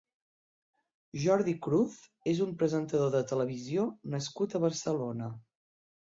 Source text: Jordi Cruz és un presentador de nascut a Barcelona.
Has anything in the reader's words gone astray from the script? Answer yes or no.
yes